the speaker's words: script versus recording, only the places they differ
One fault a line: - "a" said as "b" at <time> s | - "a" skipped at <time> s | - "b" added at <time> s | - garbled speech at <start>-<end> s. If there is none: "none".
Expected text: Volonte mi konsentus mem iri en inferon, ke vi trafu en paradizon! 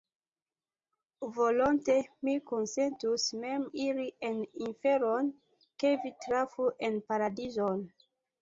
none